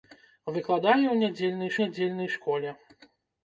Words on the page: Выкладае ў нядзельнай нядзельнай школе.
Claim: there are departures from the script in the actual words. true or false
false